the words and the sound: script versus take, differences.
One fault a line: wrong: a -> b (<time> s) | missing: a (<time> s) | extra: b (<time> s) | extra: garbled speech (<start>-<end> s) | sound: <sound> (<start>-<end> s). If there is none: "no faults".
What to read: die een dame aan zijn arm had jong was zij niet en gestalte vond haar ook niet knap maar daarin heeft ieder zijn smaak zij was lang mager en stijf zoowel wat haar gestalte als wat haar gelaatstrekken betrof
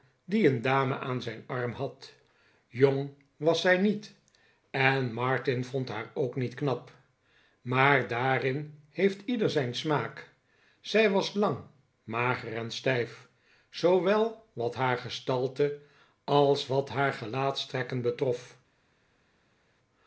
wrong: gestalte -> martin (5.1 s)